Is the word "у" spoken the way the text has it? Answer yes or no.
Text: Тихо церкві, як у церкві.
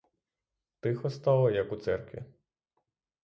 yes